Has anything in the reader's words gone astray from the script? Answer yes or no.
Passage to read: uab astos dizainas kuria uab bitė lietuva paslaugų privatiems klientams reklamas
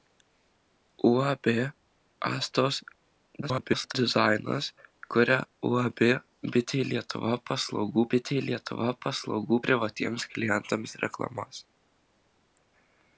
yes